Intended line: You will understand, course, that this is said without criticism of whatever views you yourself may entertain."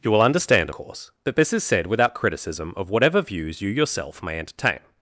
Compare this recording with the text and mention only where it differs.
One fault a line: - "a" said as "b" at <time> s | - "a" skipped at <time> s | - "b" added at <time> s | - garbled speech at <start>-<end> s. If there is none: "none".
none